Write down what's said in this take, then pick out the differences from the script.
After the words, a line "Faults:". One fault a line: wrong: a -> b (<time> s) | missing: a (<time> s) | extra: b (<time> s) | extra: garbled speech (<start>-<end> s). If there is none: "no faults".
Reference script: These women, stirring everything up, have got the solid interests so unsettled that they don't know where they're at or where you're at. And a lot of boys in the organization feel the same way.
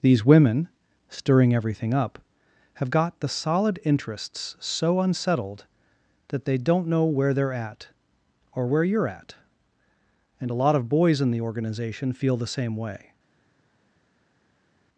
These women, stirring everything up, have got the solid interests so unsettled that they don't know where they're at or where you're at. And a lot of boys in the organization feel the same way.
Faults:
no faults